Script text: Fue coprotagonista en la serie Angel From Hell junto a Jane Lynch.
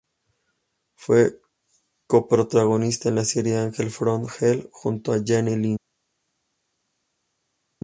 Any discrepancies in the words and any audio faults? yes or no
no